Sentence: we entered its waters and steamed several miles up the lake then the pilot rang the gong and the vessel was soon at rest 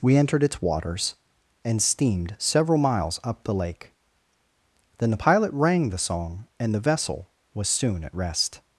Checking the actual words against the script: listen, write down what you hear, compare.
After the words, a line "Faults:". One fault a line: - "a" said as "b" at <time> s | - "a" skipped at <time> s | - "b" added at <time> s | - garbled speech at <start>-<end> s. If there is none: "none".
we entered its waters and steamed several miles up the lake then the pilot rang the song and the vessel was soon at rest
Faults:
- "gong" said as "song" at 6.0 s